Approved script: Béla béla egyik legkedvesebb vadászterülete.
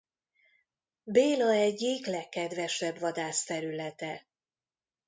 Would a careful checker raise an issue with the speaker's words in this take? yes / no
yes